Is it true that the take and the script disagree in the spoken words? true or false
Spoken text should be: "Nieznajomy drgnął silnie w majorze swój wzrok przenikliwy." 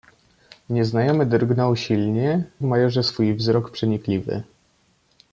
false